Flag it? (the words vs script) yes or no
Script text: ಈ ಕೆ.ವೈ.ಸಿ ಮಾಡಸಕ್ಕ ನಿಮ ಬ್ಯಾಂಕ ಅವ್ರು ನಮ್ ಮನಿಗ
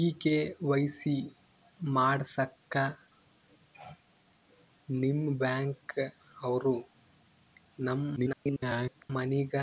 yes